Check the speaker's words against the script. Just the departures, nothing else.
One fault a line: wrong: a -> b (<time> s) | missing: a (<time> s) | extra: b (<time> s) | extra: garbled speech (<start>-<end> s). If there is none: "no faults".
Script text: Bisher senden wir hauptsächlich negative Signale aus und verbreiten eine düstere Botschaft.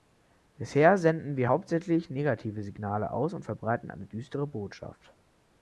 no faults